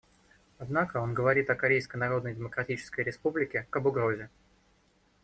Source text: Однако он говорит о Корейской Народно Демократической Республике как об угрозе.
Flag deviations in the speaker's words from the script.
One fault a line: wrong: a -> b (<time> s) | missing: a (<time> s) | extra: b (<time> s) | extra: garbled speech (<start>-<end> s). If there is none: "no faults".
missing: как (3.7 s)